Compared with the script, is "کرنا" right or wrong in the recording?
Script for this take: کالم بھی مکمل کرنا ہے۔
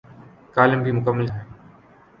wrong